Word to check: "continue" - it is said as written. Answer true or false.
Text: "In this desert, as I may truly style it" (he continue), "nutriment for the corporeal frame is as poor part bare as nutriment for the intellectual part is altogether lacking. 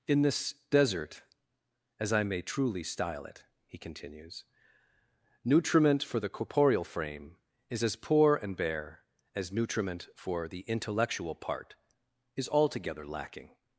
false